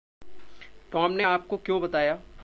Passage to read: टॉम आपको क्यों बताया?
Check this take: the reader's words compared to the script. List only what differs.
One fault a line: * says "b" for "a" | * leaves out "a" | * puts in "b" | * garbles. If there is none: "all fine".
* puts in "ने"